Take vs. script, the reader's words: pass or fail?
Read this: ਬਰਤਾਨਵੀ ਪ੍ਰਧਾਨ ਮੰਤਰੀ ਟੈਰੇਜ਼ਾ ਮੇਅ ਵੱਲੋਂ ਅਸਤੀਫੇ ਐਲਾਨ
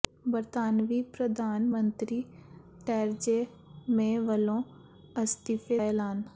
pass